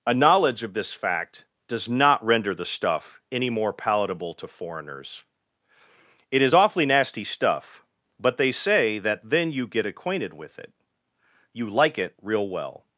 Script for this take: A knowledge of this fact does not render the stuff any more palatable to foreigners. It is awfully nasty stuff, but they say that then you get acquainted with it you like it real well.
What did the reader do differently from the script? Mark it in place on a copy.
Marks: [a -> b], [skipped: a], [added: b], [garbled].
A knowledge of this fact does not render the stuff any more palatable to foreigners. It is awfully nasty stuff, but they say that then you get acquainted with it you like it real well.